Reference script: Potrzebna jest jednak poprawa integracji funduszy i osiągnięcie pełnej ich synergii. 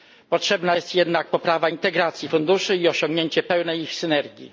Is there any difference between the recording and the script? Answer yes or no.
no